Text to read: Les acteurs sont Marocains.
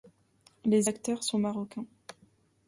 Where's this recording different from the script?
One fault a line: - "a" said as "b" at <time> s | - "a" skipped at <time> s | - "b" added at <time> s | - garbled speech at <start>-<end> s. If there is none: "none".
none